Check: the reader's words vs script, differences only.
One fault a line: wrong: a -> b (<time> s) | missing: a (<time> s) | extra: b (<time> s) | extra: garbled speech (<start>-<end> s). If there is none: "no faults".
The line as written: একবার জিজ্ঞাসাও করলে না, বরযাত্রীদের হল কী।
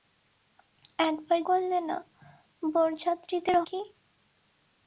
missing: জিজ্ঞাসাও (1.4 s)
missing: হল (3.6 s)